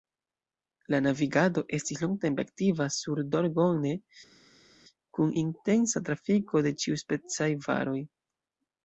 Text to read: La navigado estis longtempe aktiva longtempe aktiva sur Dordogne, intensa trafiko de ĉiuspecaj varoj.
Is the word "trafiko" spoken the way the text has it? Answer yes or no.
yes